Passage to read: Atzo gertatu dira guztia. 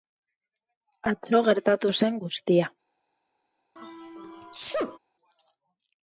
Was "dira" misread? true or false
true